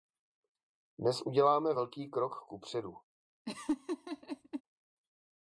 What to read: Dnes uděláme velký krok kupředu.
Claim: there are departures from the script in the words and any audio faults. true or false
true